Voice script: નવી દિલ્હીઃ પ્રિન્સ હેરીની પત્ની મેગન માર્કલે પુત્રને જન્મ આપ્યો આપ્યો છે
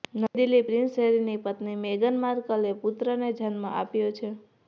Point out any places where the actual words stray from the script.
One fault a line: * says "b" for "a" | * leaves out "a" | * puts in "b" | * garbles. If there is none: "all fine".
* leaves out "આપ્યો"